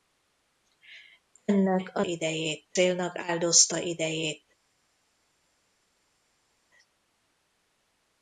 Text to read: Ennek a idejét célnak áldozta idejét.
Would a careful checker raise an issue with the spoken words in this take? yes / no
no